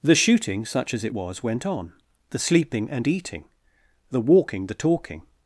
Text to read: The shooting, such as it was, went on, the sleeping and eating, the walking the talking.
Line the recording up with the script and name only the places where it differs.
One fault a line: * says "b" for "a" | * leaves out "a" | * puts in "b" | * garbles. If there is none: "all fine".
all fine